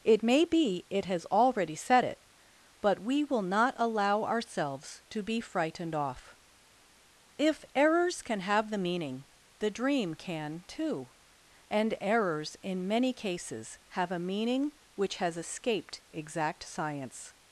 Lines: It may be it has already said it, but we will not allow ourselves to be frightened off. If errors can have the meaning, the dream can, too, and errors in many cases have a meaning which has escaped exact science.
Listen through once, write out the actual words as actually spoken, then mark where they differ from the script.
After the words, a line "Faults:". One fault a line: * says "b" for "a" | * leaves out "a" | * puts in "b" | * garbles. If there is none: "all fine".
It may be it has already said it, but we will not allow ourselves to be frightened off. If errors can have the meaning, the dream can, too, and errors in many cases have a meaning which has escaped exact science.
Faults:
all fine